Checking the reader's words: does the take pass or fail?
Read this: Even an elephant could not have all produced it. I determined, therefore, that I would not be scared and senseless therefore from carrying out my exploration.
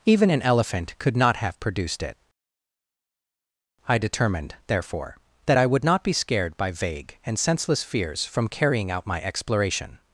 fail